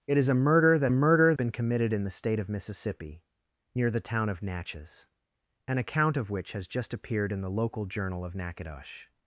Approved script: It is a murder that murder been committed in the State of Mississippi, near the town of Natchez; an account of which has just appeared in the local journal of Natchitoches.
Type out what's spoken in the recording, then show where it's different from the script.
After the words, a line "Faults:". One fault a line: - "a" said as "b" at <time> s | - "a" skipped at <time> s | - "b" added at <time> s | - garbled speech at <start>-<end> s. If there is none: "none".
It is a murder that murder been committed in the State of Mississippi, near the town of Natchez; an account of which has just appeared in the local journal of Natchitoches.
Faults:
none